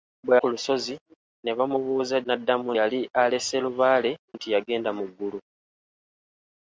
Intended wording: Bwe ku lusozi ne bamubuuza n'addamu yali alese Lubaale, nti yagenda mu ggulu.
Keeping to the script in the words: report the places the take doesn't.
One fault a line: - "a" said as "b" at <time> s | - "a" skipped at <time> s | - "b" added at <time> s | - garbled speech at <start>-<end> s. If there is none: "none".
none